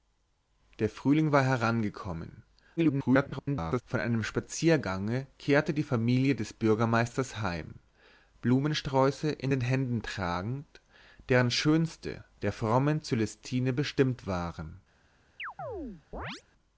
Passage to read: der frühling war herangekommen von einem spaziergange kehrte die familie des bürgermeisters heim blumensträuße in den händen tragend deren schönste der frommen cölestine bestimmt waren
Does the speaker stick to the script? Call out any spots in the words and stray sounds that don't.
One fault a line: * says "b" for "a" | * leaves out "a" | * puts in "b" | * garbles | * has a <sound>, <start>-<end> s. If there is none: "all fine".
* garbles
* has a chirp, 15.4-16.4 s